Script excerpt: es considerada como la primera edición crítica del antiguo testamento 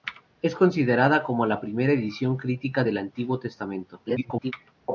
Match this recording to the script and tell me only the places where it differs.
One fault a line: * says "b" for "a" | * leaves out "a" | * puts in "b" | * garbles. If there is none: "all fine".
* garbles